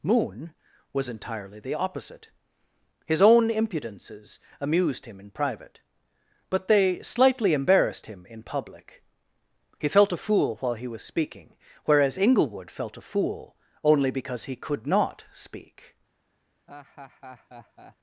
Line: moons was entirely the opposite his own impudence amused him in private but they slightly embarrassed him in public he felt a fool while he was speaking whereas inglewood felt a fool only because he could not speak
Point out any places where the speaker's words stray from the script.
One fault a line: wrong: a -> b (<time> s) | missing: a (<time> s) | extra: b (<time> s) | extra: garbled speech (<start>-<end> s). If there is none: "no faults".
wrong: moons -> moon (0.0 s)
wrong: impudence -> impudences (3.5 s)